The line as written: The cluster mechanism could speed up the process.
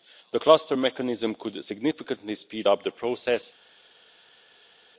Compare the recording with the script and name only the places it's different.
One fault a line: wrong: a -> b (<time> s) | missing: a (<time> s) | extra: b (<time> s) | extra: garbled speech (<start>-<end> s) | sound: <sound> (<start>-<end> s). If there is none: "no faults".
extra: significantly (1.6 s)